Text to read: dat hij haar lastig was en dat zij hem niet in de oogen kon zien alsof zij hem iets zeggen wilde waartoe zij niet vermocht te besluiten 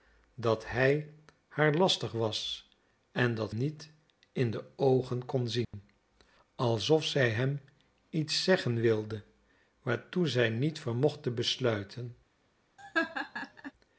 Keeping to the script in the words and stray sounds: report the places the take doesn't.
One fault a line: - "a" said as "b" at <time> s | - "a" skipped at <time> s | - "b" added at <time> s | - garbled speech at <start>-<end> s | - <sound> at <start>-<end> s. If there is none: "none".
- "zij hem" skipped at 3.5 s
- dropout at 5.6-5.7 s
- laugh at 12.8-13.7 s